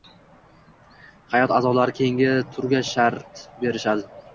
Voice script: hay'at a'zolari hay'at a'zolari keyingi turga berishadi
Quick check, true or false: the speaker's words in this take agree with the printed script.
false